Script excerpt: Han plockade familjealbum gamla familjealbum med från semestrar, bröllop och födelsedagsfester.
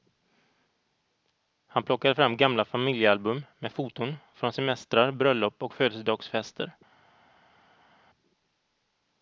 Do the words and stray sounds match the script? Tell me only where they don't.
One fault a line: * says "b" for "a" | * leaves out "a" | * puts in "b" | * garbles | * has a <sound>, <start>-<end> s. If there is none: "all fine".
* says "fram" for "familjealbum"
* puts in "foton"